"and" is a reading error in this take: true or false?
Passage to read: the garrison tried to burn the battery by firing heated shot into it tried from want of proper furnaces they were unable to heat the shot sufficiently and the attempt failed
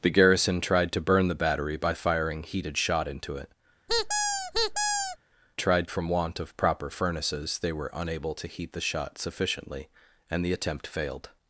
false